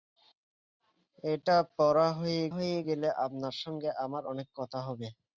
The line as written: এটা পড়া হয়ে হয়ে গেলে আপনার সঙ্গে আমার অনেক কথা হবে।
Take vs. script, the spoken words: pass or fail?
pass